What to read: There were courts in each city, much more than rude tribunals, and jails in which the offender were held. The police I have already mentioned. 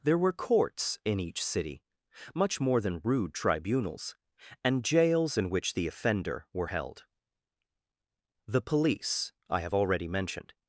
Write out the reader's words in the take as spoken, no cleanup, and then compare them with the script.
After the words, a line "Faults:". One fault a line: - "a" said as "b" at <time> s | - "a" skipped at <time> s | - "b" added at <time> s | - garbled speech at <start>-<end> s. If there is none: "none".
There were courts in each city, much more than rude tribunals, and jails in which the offender were held. The police I have already mentioned.
Faults:
none